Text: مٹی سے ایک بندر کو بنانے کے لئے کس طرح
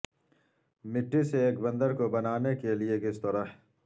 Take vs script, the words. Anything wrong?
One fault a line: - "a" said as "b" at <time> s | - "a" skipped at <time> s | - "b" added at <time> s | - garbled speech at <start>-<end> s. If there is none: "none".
none